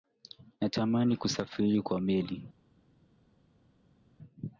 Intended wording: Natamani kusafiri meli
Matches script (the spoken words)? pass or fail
fail